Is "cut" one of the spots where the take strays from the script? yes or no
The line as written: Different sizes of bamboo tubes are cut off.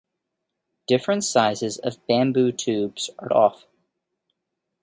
yes